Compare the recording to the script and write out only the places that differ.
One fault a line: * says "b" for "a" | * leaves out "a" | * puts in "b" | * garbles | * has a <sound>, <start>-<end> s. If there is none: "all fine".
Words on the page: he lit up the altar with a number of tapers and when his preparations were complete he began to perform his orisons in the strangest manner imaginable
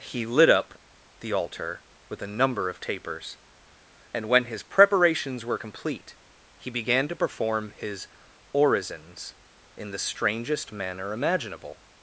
all fine